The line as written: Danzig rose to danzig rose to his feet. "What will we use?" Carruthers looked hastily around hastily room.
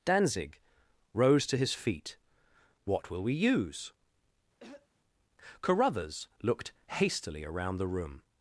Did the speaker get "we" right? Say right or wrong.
right